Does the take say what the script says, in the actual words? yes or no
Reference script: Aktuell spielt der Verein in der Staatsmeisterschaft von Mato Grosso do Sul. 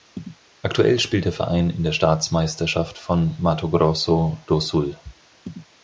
yes